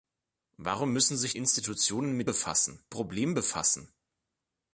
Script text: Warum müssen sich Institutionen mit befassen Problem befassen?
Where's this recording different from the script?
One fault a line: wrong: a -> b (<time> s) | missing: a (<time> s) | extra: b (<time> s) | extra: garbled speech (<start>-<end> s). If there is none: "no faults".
no faults